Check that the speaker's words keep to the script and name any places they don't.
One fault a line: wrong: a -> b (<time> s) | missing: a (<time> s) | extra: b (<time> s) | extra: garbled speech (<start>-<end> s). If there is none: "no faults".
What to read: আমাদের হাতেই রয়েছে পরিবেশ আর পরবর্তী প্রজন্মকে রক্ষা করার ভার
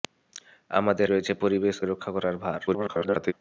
missing: হাতেই (1.1 s)
missing: আর পরবর্তী প্রজন্মকে (1.7 s)
extra: garbled speech (2.7-3.3 s)